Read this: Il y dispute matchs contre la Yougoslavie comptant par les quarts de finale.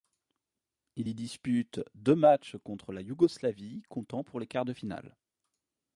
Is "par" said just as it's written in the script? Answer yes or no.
no